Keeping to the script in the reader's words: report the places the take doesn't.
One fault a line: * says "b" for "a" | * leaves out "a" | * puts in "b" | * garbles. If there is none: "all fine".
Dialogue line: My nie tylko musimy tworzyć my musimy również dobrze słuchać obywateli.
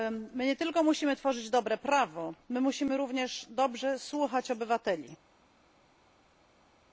* puts in "dobre prawo"